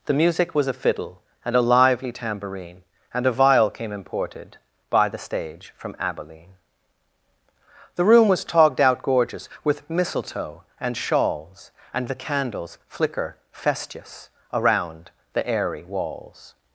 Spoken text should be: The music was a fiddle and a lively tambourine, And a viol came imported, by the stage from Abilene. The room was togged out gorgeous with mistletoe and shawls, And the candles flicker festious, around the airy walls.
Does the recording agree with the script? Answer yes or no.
yes